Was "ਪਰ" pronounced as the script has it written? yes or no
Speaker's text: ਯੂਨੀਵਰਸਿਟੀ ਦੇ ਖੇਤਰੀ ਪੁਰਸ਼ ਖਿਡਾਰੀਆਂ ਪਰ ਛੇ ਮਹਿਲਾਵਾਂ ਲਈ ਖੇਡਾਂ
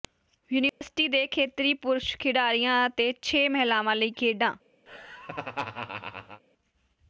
no